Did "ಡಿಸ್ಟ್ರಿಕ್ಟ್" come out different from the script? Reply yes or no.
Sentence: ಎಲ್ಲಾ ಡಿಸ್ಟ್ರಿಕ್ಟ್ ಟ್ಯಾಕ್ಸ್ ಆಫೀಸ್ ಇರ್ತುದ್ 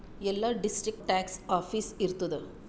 no